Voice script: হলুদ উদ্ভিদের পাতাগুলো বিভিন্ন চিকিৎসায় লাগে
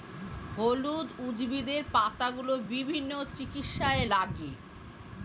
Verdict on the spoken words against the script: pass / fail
pass